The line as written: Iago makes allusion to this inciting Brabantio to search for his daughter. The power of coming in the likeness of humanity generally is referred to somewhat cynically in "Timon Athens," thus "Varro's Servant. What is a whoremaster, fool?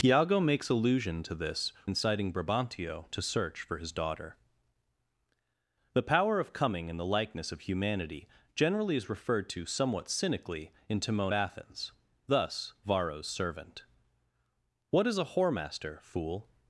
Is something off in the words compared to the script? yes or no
no